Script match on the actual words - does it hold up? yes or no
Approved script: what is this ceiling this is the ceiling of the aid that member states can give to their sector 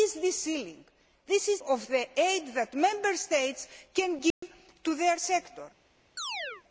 no